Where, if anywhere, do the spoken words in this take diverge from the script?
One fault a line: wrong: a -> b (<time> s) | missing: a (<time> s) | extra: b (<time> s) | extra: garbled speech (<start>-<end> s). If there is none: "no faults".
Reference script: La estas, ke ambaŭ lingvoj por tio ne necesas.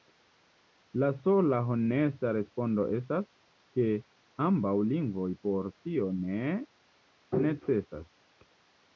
extra: sola honesta respondo (1.2 s)